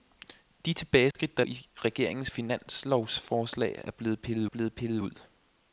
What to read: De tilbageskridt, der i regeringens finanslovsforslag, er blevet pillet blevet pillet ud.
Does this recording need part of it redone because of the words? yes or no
no